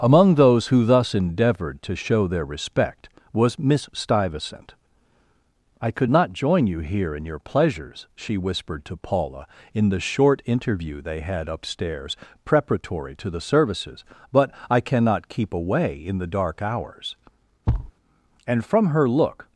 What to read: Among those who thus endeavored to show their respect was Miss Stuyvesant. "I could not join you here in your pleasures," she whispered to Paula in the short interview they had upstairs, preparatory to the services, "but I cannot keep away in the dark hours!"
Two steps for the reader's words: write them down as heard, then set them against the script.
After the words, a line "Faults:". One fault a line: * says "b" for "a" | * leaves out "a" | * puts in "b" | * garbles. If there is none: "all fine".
Among those who thus endeavored to show their respect was Miss Stuyvesant. "I could not join you here in your pleasures," she whispered to Paula in the short interview they had upstairs, preparatory to the services, "but I cannot keep away in the dark hours!" And from her look
Faults:
* puts in "And from her look"